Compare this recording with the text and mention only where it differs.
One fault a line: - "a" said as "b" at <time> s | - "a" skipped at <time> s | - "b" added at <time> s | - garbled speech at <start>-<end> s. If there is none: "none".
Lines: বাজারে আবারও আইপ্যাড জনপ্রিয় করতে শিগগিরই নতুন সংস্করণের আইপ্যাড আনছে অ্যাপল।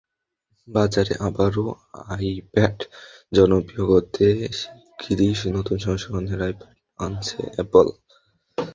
none